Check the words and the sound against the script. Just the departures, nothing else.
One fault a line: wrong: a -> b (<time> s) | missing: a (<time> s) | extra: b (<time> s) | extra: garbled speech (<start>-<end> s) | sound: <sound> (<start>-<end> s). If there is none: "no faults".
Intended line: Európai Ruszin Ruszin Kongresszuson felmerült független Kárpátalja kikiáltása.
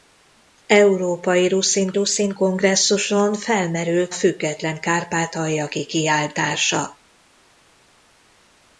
no faults